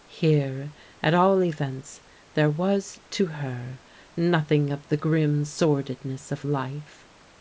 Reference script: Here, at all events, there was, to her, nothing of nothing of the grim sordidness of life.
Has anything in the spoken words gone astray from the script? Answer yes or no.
yes